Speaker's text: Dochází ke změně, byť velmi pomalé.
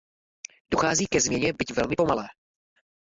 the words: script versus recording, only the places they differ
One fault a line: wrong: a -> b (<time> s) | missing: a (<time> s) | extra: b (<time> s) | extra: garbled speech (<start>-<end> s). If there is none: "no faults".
no faults